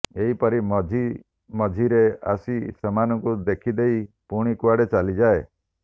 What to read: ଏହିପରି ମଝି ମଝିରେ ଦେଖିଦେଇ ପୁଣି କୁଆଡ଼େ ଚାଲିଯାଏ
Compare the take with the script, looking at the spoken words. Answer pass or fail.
fail